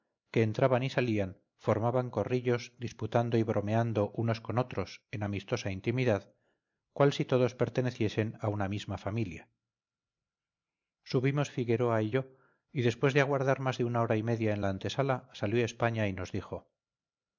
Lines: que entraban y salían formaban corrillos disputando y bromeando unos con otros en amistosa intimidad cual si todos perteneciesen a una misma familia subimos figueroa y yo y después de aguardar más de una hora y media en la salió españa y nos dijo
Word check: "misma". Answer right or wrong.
right